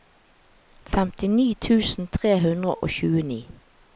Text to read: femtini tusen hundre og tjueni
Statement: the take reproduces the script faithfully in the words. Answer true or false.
false